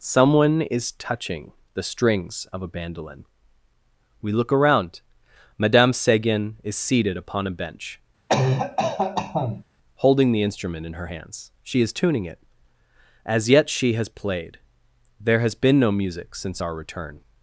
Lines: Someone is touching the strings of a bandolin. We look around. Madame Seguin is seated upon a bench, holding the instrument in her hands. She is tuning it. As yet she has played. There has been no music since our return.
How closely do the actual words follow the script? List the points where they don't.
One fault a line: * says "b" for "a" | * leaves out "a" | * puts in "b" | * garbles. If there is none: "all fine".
all fine